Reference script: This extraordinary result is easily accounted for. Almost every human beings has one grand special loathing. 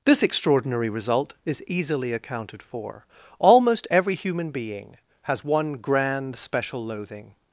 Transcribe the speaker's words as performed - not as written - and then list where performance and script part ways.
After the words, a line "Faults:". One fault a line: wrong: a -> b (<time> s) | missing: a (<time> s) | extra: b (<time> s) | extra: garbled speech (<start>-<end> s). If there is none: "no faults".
This extraordinary result is easily accounted for. Almost every human being has one grand special loathing.
Faults:
wrong: beings -> being (4.5 s)